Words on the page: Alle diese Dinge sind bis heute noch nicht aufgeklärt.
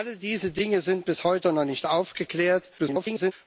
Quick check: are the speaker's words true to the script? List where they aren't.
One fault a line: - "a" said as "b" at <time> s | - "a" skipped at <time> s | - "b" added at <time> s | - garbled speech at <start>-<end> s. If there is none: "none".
- garbled speech at 2.8-3.3 s